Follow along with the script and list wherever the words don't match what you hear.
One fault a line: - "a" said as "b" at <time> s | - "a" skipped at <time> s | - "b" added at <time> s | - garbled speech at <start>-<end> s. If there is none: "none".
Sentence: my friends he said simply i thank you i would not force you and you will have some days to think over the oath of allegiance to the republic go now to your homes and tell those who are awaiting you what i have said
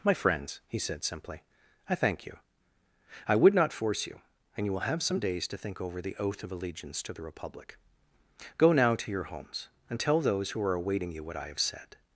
none